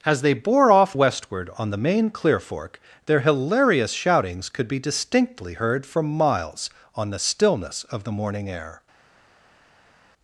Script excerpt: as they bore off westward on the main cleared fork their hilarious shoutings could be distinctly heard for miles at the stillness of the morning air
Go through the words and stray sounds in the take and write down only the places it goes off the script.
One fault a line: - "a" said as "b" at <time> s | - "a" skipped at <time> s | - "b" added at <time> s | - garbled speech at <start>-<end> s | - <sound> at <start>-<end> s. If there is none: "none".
- "cleared" said as "clear" at 2.1 s
- "at" said as "on" at 6.9 s